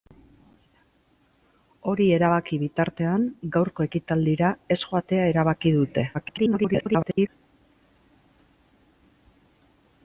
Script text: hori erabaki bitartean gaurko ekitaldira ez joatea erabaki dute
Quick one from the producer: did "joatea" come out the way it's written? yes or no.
yes